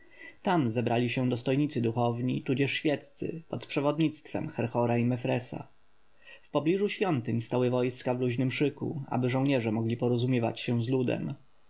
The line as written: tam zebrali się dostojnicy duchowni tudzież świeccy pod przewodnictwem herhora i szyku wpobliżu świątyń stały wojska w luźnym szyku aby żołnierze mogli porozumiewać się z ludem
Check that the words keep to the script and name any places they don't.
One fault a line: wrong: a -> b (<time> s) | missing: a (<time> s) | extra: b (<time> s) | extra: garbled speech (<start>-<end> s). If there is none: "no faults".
wrong: szyku -> mefresa (5.0 s)